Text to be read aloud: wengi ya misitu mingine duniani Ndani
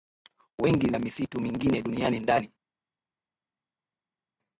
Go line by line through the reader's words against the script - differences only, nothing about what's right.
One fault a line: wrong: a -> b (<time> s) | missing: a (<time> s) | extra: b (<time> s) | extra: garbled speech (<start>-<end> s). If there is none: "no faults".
no faults